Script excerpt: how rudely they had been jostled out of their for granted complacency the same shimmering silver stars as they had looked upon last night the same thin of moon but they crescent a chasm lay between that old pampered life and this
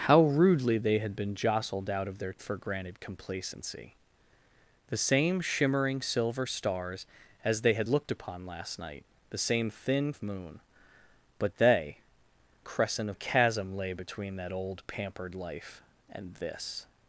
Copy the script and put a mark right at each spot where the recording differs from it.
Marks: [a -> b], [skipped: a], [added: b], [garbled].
how rudely they had been jostled out of their for granted complacency the same shimmering silver stars as they had looked upon last night the same thin of moon but they crescent a chasm lay between that old pampered life and this